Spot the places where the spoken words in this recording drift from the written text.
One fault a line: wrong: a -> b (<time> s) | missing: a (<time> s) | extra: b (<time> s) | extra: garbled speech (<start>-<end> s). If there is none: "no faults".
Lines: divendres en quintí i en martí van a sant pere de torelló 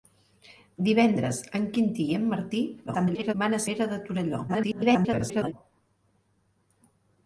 extra: garbled speech (2.9-3.3 s)
missing: sant (3.6 s)
extra: garbled speech (4.5-5.5 s)